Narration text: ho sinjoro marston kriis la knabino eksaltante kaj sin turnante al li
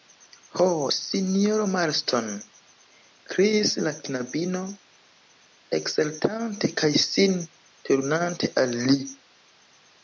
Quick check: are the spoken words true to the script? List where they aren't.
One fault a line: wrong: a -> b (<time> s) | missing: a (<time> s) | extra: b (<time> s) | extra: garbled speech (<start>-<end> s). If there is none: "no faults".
no faults